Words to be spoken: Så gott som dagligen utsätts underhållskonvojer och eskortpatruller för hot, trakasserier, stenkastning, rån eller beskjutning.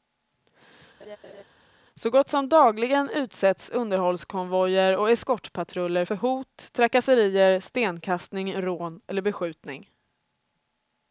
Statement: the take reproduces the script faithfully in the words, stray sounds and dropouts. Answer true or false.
false